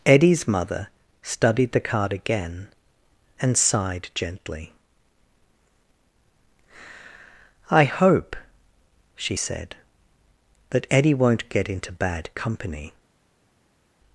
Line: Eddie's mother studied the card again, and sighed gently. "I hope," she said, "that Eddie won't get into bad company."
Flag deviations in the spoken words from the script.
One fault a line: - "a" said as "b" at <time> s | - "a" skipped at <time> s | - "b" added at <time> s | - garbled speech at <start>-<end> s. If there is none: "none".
none